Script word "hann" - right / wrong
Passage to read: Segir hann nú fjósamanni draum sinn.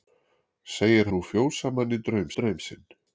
wrong